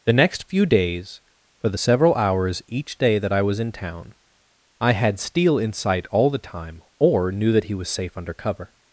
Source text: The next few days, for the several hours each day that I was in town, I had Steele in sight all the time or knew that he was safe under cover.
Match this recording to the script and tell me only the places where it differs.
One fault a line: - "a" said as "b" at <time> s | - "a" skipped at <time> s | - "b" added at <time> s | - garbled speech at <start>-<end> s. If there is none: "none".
none